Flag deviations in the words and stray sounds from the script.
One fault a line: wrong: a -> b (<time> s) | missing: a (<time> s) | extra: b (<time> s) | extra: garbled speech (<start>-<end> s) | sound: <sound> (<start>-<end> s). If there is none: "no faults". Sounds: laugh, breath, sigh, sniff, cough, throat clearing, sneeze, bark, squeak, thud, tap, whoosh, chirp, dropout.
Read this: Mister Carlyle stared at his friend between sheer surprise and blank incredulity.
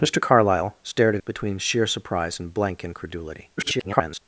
missing: his friend (1.2 s)
extra: garbled speech (3.6-4.2 s)